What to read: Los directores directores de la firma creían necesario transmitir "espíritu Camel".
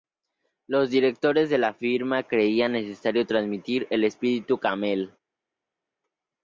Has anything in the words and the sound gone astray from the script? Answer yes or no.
yes